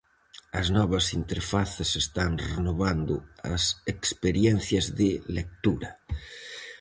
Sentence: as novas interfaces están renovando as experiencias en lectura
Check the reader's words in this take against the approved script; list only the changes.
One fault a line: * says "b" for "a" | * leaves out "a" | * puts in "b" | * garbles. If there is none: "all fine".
* says "de" for "en"